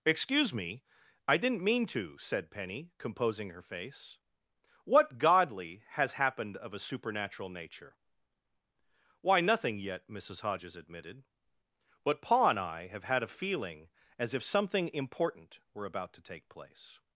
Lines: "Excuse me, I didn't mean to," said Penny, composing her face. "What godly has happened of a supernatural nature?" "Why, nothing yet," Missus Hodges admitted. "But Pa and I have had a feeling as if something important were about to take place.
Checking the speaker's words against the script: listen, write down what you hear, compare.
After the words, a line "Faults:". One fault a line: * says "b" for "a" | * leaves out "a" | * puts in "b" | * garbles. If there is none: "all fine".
"Excuse me, I didn't mean to," said Penny, composing her face. "What godly has happened of a supernatural nature?" "Why, nothing yet," Missus Hodges admitted. "But Pa and I have had a feeling as if something important were about to take place.
Faults:
all fine